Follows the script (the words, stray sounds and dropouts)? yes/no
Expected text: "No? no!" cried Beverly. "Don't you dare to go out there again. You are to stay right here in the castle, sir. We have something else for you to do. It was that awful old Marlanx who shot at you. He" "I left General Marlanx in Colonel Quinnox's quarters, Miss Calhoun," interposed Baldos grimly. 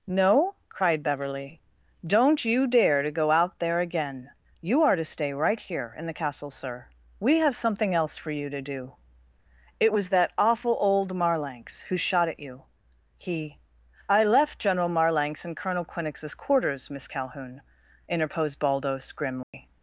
no